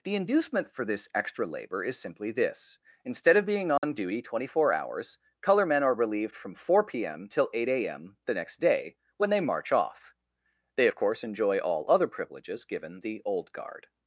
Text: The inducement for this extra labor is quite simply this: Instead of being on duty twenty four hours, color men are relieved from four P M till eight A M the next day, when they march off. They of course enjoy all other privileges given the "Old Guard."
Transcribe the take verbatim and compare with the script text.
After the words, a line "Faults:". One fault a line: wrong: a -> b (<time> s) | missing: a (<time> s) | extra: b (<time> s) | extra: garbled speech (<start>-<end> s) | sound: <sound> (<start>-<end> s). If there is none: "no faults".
The inducement for this extra labor is simply this: Instead of being on duty twenty four hours, color men are relieved from four P M till eight A M the next day, when they march off. They of course enjoy all other privileges given the "Old Guard."
Faults:
missing: quite (1.9 s)
sound: dropout (3.8-3.8 s)